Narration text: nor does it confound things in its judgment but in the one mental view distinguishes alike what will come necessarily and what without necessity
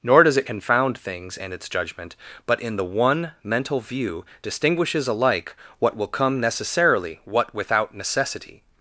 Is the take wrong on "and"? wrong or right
wrong